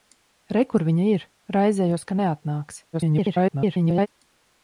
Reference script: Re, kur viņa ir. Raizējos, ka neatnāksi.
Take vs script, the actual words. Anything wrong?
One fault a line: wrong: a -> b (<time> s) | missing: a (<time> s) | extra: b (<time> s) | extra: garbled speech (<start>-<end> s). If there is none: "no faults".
extra: garbled speech (2.9-4.1 s)